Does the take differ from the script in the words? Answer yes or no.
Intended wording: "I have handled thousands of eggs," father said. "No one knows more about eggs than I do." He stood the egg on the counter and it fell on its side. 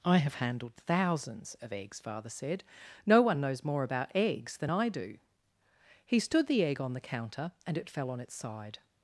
no